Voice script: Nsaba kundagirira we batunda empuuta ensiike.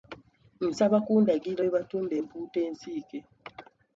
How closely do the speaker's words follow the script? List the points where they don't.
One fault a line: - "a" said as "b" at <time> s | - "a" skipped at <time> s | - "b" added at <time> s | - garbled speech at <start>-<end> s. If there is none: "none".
none